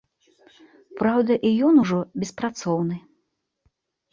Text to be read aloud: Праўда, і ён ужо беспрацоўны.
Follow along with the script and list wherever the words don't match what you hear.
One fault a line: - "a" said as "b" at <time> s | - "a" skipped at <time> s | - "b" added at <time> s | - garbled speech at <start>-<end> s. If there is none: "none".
none